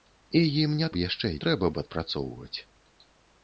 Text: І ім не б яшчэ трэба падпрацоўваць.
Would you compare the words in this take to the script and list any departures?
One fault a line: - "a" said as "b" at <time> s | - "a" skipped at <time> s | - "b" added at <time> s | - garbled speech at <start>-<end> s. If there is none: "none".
none